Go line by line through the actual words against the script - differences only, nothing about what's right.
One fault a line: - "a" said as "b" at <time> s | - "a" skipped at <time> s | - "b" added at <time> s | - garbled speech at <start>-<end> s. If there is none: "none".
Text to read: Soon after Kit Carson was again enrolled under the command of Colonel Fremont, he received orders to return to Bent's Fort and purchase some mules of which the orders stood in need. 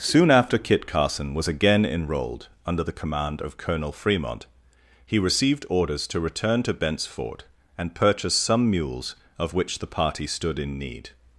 - "orders" said as "party" at 9.9 s